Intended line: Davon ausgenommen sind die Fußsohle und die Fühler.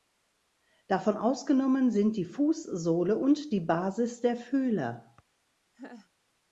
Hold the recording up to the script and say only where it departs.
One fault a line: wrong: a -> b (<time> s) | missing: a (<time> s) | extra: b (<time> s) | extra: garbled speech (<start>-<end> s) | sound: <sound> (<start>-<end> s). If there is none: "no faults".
extra: Basis der (3.6 s)
sound: laugh (5.7-6.1 s)